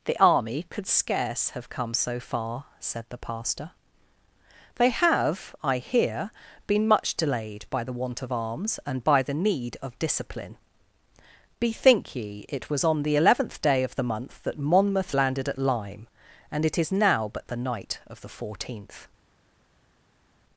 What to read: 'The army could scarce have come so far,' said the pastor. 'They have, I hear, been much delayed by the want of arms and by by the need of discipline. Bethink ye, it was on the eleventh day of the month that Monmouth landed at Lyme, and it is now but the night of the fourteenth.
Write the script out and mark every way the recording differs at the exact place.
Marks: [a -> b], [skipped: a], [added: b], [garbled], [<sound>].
'The army could scarce have come so far,' said the pastor. 'They have, I hear, been much delayed by the want of arms and by [skipped: by] the need of discipline. Bethink ye, it was on the eleventh day of the month that Monmouth landed at Lyme, and it is now but the night of the fourteenth.